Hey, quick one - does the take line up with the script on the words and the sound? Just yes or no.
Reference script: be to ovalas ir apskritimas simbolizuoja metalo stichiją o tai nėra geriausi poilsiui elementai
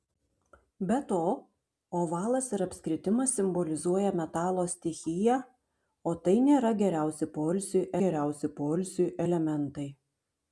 no